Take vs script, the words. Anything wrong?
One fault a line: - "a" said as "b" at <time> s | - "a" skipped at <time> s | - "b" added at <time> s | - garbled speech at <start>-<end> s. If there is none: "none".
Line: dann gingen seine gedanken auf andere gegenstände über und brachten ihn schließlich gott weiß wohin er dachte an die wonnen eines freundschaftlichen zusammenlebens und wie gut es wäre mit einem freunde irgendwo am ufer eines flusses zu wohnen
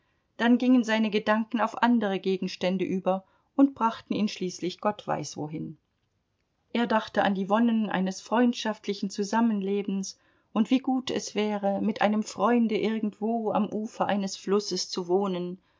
none